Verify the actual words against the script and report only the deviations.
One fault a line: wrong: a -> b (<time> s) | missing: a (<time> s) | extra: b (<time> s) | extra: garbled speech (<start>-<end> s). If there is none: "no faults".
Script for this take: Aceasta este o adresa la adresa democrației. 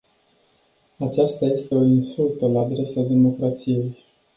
wrong: adresa -> insultă (1.8 s)